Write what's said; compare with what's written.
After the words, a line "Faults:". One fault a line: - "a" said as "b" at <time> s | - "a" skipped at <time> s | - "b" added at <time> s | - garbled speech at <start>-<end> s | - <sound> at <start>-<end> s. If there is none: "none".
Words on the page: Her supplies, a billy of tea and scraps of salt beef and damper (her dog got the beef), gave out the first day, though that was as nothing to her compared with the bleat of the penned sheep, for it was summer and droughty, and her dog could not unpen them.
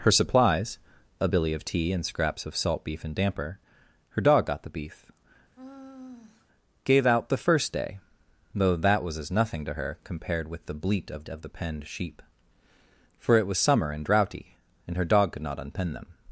Her supplies, a billy of tea and scraps of salt beef and damper (her dog got the beef), gave out the first day, though that was as nothing to her compared with the bleat of of the penned sheep, for it was summer and droughty, and her dog could not unpen them.
Faults:
- sigh at 5.6-6.5 s
- "of" added at 11.3 s